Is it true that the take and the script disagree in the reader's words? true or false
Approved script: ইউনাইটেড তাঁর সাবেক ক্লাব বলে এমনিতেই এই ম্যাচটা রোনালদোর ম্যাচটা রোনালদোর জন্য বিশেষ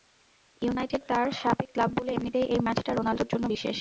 true